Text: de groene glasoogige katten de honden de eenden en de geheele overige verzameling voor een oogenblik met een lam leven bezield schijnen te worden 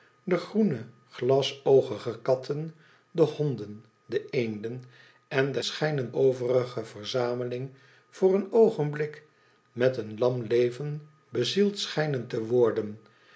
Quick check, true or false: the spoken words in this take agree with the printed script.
false